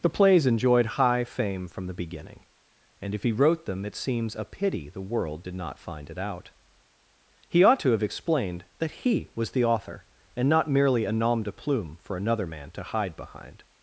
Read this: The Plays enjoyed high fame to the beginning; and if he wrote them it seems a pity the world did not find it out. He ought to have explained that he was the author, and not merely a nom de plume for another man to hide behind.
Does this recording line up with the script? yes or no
no